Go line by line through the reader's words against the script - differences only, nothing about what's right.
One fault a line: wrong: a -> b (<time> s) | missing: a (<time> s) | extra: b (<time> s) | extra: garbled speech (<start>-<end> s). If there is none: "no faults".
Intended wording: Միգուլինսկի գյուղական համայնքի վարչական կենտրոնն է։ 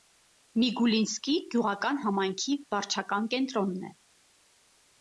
no faults